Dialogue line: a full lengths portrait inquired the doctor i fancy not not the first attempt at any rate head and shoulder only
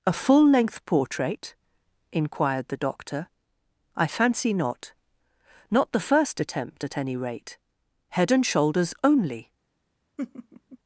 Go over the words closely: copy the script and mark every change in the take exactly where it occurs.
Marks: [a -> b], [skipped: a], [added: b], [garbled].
a full [lengths -> length] portrait inquired the doctor i fancy not not the first attempt at any rate head and [shoulder -> shoulders] only